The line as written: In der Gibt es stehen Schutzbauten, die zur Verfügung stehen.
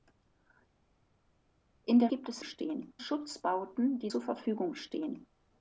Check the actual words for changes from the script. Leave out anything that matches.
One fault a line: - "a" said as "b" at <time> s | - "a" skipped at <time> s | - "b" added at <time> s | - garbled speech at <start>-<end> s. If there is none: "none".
none